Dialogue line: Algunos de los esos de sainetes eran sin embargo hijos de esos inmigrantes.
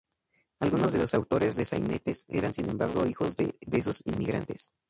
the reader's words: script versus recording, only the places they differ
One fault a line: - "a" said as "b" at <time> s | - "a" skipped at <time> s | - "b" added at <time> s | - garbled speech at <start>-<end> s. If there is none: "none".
- "esos" said as "autores" at 1.1 s